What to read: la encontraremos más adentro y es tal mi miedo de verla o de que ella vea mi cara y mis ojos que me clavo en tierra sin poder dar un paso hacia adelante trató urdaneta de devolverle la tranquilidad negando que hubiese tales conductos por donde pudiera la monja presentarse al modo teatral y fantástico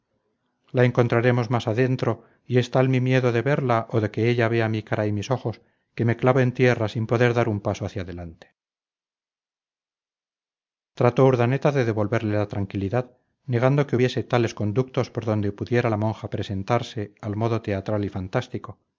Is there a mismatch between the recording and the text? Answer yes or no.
no